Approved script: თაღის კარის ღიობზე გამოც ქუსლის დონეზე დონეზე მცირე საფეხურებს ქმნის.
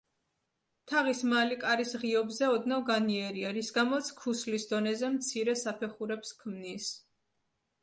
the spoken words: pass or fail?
fail